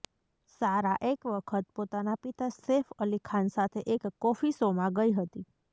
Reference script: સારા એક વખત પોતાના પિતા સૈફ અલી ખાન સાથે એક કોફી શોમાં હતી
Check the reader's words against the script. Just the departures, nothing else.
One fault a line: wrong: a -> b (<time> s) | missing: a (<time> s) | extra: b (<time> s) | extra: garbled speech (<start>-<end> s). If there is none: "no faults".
extra: ગઈ (5.0 s)